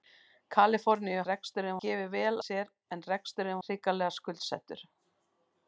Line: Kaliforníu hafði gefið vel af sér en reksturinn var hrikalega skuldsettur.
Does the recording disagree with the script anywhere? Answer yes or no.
yes